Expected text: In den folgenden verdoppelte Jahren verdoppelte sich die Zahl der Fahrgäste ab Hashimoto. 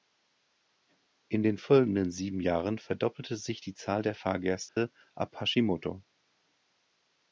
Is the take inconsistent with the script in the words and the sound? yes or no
yes